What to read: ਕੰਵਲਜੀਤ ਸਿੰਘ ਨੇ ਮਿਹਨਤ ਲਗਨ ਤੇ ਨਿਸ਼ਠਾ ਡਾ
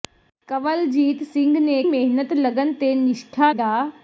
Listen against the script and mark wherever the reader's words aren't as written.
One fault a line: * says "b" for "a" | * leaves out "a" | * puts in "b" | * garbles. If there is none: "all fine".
all fine